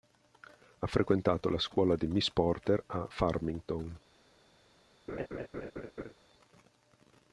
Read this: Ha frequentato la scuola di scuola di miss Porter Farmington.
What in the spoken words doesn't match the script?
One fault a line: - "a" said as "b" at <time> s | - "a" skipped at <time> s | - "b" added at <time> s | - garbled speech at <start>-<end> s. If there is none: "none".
- "scuola di" skipped at 2.1 s
- "a" added at 2.9 s